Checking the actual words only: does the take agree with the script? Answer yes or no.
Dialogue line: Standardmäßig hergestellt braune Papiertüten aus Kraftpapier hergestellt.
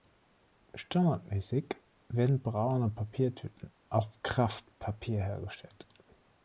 no